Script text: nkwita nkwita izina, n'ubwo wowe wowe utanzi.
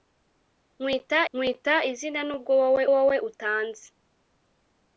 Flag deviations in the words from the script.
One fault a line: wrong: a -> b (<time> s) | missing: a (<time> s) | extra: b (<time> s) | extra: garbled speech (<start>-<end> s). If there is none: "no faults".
no faults